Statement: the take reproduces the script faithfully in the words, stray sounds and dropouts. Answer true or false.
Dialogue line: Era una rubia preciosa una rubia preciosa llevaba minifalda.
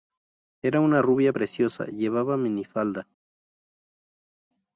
false